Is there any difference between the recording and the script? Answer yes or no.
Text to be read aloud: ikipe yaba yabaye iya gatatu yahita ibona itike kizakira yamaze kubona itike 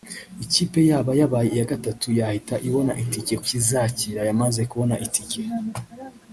no